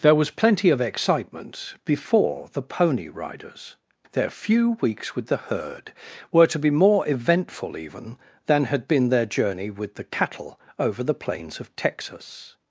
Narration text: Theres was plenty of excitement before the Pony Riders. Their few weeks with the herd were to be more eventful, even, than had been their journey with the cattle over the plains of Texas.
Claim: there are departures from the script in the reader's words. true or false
true